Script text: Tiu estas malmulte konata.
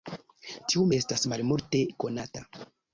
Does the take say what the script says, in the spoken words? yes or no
yes